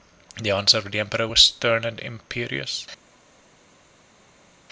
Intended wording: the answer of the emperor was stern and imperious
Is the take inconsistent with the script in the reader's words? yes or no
no